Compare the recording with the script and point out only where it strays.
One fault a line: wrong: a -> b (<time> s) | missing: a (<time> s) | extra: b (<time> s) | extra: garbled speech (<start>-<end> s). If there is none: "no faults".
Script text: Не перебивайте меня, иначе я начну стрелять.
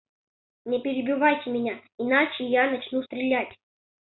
no faults